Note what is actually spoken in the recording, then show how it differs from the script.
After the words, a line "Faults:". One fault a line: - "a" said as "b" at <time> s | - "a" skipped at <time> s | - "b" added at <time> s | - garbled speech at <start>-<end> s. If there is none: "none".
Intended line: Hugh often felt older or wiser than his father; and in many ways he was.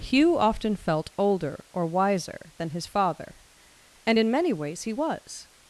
Hugh often felt older or wiser than his father; and in many ways he was.
Faults:
none